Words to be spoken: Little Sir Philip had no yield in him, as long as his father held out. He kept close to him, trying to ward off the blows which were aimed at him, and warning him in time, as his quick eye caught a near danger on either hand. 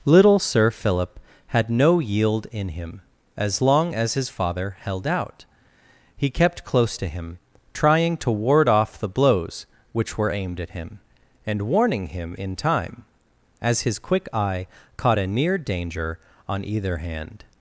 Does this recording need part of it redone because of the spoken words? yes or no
no